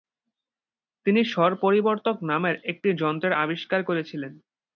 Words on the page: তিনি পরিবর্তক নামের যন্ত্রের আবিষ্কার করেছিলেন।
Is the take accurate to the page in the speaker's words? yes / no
no